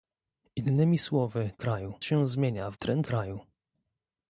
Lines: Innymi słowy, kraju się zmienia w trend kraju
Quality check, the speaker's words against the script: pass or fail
pass